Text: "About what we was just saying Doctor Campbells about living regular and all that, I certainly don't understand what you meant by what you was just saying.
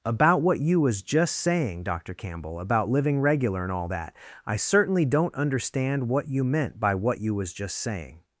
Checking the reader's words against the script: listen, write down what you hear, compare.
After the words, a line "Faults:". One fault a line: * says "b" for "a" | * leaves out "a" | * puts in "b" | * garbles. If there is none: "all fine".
"About what you was just saying Doctor Campbell about living regular and all that, I certainly don't understand what you meant by what you was just saying.
Faults:
* says "you" for "we"
* says "Campbell" for "Campbells"